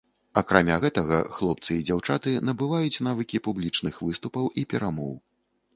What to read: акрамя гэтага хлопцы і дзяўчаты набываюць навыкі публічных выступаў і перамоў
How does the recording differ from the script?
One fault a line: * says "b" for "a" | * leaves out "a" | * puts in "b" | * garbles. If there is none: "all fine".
all fine